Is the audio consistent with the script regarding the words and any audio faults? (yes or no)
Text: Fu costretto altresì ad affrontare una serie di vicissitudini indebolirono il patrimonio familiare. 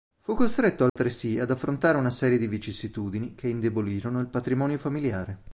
no